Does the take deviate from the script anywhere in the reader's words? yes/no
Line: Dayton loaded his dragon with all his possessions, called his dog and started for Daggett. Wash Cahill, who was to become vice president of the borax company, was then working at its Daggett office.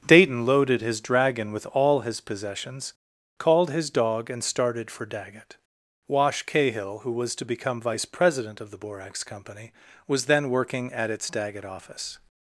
no